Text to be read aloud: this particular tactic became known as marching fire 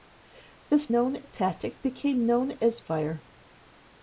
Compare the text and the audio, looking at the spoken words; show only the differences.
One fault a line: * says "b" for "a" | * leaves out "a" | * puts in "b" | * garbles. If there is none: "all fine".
* says "known" for "particular"
* leaves out "marching"